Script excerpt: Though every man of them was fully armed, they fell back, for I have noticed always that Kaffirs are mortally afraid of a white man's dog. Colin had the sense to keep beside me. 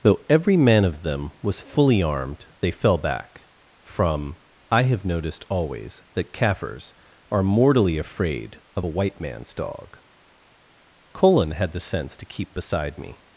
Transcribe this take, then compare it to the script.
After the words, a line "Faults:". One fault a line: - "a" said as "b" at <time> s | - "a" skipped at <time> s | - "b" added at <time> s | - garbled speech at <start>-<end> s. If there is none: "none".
Though every man of them was fully armed, they fell back, from I have noticed always that Kaffirs are mortally afraid of a white man's dog. Colin had the sense to keep beside me.
Faults:
- "for" said as "from" at 3.8 s